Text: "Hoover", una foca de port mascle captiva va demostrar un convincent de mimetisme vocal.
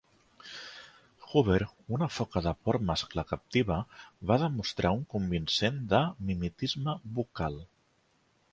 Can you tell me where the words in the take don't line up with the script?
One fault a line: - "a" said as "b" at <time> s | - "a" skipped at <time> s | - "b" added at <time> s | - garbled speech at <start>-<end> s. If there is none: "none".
none